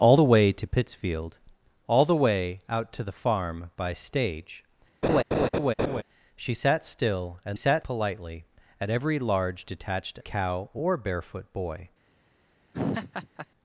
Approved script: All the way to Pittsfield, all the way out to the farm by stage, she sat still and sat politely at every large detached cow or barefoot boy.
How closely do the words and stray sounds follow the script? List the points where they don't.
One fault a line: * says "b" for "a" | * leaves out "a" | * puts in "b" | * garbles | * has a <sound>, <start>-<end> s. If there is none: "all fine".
* has a laugh, 5.0-6.0 s
* has a laugh, 12.7-13.5 s